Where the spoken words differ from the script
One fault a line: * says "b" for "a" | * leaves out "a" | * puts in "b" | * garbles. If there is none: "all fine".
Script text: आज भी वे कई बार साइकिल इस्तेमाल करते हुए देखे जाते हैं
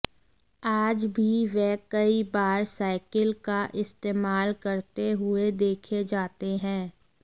* puts in "का"